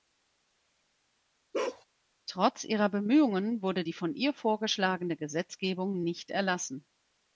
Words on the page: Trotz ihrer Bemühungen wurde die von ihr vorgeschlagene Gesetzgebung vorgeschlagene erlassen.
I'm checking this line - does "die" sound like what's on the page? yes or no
yes